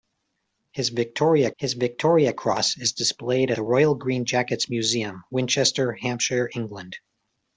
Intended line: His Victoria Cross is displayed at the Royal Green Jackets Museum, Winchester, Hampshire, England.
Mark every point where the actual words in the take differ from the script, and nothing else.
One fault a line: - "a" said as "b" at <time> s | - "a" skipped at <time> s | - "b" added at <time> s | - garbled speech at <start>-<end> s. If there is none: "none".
- "his Victoria" added at 1.6 s
- "at" skipped at 3.5 s